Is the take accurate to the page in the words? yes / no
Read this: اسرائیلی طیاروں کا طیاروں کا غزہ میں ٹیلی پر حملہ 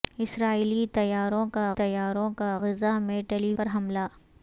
yes